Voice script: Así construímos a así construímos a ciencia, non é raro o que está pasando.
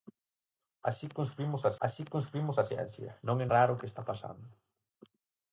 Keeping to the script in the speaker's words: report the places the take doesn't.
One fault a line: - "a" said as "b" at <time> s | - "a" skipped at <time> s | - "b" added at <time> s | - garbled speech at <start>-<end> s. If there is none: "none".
none